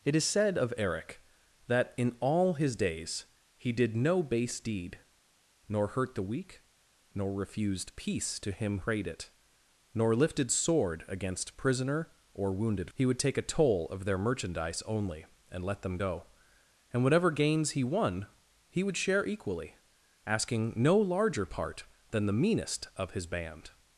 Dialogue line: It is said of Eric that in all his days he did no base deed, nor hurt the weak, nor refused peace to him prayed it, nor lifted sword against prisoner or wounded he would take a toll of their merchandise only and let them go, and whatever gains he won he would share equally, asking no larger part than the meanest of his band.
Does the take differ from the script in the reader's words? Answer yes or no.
no